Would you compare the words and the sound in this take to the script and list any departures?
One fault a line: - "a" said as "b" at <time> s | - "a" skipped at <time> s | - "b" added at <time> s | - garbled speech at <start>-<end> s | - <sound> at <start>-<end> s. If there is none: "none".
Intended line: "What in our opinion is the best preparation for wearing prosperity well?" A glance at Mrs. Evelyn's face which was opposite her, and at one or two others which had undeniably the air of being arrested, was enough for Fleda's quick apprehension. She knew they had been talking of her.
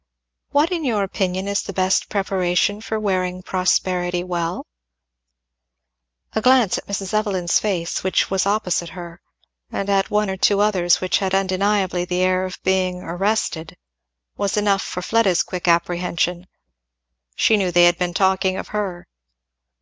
- "our" said as "your" at 0.8 s